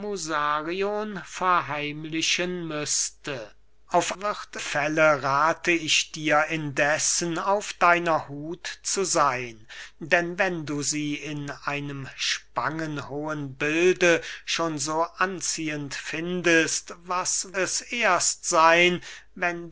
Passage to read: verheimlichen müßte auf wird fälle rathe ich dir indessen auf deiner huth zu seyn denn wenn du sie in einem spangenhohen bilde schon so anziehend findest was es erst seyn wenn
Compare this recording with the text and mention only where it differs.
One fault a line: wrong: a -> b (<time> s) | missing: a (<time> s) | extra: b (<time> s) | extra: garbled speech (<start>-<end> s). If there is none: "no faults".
no faults